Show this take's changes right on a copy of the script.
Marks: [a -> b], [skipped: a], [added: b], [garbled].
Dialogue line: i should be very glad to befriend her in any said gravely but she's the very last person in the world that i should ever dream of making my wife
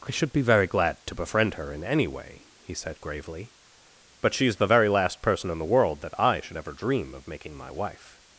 i should be very glad to befriend her in any [added: way he] said gravely but she's the very last person in the world that i should ever dream of making my wife